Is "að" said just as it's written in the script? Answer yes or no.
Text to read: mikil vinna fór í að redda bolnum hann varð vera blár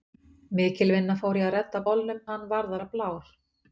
yes